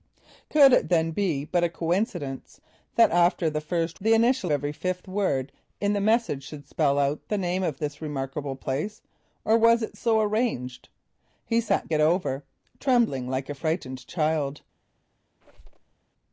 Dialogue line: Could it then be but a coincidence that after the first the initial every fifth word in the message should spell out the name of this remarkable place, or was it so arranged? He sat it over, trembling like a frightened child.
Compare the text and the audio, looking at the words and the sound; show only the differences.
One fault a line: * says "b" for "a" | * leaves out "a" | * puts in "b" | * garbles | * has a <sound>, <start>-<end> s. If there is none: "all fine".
* has a squeak, 15.4-15.9 s